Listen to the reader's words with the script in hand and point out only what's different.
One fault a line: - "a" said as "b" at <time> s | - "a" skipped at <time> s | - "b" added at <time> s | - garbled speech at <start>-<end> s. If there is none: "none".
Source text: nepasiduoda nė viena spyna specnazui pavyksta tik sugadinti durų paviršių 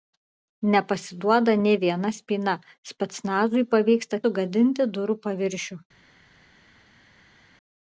- "tik" skipped at 4.3 s